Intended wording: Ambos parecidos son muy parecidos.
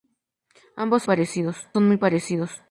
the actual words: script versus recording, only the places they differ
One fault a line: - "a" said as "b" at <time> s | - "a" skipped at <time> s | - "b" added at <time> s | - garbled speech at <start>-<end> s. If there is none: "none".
none